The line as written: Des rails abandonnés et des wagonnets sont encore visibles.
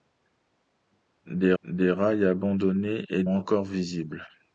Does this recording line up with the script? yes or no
no